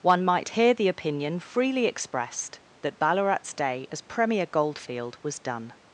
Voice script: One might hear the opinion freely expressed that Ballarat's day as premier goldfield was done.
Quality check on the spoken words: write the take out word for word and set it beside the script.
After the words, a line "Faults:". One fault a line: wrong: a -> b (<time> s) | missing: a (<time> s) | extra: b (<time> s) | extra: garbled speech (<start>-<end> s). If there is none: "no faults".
One might hear the opinion freely expressed that Ballarat's day as premier goldfield was done.
Faults:
no faults